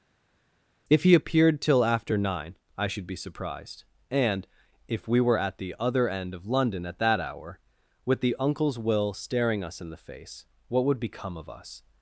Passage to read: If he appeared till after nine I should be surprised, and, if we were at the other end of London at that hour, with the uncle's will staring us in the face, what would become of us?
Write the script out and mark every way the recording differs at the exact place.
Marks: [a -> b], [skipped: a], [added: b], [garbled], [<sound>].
If he appeared till after nine I should be surprised, and, if we were at the other end of London at that hour, with the uncle's will staring us in the face, what would become of us?